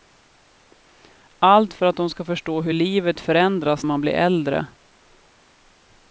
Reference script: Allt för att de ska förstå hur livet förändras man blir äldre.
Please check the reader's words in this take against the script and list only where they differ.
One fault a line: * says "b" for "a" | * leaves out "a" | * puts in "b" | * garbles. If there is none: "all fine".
all fine